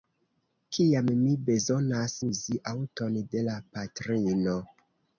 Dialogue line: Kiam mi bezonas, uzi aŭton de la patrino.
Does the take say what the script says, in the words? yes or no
yes